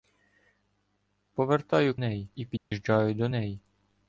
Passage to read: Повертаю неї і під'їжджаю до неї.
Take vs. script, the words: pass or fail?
pass